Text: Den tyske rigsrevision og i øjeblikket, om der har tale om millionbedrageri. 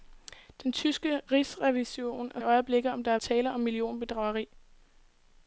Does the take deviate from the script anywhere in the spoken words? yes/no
no